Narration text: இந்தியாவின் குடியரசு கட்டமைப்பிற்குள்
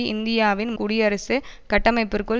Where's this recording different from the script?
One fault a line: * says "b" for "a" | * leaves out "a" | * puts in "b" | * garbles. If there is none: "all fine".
all fine